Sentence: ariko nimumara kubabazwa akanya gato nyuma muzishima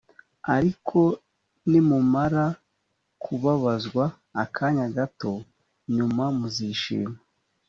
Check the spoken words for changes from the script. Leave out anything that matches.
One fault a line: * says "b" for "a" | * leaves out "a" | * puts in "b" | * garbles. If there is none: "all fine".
all fine